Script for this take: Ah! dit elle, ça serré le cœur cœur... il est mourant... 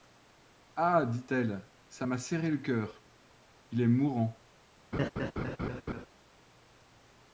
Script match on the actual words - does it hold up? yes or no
no